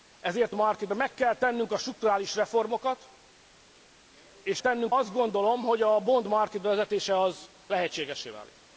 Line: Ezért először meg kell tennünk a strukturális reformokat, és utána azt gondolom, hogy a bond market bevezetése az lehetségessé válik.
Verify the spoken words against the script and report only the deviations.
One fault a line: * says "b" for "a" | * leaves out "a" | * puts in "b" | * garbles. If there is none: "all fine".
* says "market" for "először"
* says "tennünk" for "utána"